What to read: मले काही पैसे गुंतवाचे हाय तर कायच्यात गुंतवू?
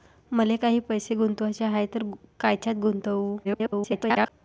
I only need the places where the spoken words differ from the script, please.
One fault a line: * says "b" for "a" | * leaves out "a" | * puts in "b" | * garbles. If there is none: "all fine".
* garbles